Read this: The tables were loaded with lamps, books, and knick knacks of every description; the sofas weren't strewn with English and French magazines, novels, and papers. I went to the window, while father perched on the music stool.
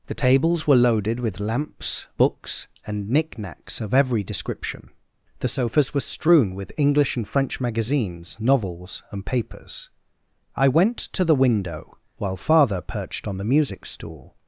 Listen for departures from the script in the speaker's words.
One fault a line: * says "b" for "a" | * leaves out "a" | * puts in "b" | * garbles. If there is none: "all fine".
* says "were" for "weren't"